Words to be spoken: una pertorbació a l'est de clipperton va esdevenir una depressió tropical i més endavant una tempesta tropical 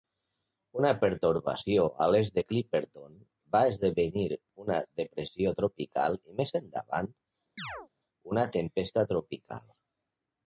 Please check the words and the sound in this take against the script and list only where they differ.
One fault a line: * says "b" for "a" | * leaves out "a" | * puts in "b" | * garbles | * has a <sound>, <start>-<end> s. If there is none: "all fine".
* has a chirp, 7.6-7.9 s